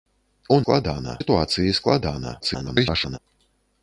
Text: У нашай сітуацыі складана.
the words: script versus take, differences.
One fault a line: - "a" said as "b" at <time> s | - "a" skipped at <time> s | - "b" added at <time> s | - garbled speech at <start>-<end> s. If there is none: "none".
- "нашай" said as "складана" at 0.6 s
- garbled speech at 2.4-3.2 s